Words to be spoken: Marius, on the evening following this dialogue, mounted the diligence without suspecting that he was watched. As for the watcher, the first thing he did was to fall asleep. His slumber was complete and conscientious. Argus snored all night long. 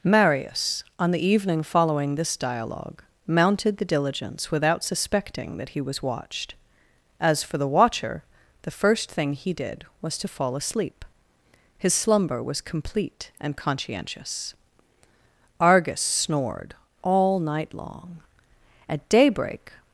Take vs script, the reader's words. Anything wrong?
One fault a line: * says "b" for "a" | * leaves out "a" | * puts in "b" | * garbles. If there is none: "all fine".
* puts in "At daybreak"